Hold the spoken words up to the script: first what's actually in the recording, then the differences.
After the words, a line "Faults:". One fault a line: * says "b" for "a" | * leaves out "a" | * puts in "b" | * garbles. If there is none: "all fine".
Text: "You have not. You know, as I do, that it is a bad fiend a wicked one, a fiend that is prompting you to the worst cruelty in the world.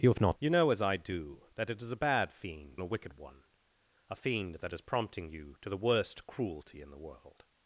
"You have not. You know, as I do, that it is a bad fiend a wicked one, a fiend that is prompting you to the worst cruelty in the world.
Faults:
all fine